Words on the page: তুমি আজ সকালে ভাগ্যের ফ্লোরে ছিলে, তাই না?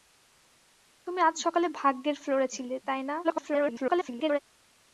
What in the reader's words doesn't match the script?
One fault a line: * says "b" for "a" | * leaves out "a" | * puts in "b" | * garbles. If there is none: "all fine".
* garbles